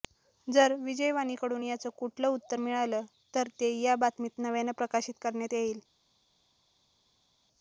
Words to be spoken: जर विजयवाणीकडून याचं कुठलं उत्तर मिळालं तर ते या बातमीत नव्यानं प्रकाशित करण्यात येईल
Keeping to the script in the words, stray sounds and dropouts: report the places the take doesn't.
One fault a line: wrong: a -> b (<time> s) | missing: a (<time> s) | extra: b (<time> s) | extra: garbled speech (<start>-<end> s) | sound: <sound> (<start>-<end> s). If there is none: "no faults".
no faults